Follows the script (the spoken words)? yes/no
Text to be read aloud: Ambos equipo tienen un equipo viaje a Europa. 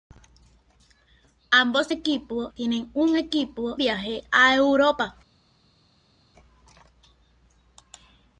yes